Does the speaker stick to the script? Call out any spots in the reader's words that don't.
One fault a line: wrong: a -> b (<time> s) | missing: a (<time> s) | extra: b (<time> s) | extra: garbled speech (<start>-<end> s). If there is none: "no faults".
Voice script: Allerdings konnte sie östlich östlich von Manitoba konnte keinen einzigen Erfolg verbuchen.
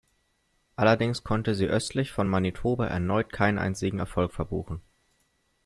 missing: östlich (2.1 s)
wrong: konnte -> erneut (2.9 s)